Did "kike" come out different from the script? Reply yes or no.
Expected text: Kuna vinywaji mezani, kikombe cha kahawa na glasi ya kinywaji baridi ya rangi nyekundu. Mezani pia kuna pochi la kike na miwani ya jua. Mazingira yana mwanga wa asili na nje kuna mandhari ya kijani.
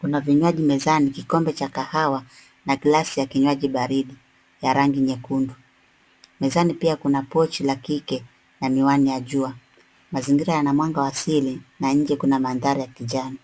no